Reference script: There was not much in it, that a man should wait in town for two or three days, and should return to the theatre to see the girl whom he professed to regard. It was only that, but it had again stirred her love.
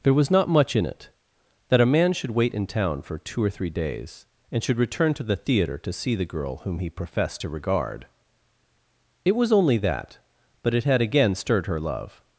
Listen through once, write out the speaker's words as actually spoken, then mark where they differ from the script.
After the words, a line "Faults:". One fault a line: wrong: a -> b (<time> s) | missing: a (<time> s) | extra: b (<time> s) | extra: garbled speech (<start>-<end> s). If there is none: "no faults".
There was not much in it, that a man should wait in town for two or three days, and should return to the theatre to see the girl whom he professed to regard. It was only that, but it had again stirred her love.
Faults:
no faults